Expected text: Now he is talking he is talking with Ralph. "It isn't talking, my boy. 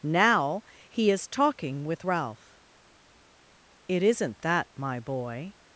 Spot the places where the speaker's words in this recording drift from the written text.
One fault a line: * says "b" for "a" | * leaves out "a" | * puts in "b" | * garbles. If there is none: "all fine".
* leaves out "he is talking"
* says "that" for "talking"